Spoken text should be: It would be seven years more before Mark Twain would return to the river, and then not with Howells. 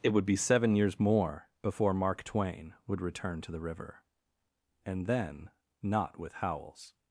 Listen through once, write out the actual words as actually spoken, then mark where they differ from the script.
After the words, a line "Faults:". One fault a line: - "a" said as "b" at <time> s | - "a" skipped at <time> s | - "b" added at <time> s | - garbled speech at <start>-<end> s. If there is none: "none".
It would be seven years more before Mark Twain would return to the river, and then not with Howells.
Faults:
none